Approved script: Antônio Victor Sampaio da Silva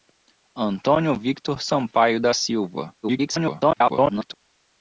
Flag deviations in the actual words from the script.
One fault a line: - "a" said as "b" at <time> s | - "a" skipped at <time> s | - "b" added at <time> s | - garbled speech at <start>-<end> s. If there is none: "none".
- garbled speech at 3.0-4.3 s